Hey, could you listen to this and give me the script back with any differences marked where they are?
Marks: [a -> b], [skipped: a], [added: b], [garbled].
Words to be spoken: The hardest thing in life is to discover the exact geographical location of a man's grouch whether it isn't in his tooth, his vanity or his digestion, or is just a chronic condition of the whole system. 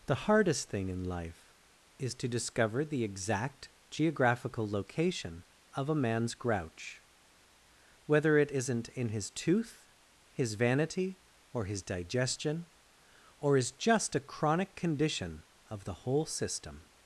The hardest thing in life is to discover the exact geographical location of a man's grouch whether it isn't in his tooth, his vanity or his digestion, or is just a chronic condition of the whole system.